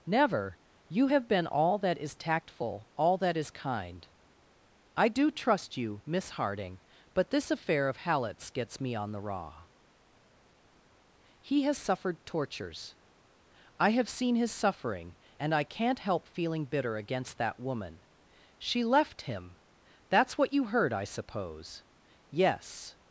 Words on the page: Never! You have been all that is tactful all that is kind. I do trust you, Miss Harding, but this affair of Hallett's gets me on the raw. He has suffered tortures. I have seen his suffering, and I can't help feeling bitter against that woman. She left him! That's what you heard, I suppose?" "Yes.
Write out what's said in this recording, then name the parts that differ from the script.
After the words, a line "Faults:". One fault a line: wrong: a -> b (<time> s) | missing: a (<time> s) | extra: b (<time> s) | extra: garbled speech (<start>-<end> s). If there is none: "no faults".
Never! You have been all that is tactful all that is kind. I do trust you, Miss Harding, but this affair of Hallett's gets me on the raw. He has suffered tortures. I have seen his suffering, and I can't help feeling bitter against that woman. She left him! That's what you heard, I suppose?" "Yes.
Faults:
no faults